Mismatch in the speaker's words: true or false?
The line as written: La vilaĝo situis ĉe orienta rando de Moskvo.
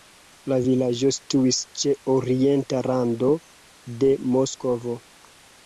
false